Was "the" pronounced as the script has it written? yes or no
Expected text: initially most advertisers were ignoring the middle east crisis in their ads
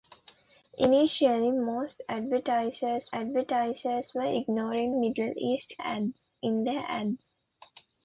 no